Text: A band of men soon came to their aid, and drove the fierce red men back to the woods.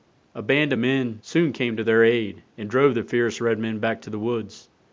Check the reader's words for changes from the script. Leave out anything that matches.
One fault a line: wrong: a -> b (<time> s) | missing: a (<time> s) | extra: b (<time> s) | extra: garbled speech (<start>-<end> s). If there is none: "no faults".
no faults